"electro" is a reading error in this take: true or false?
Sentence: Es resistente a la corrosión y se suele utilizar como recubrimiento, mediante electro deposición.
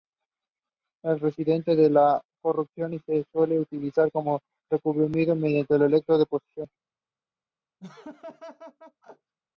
false